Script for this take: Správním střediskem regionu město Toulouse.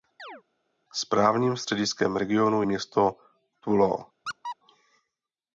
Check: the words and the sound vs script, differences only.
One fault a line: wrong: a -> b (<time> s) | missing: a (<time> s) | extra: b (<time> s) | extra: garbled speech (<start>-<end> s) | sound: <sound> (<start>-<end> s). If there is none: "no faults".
sound: chirp (0.2-0.4 s)
sound: squeak (4.3-4.6 s)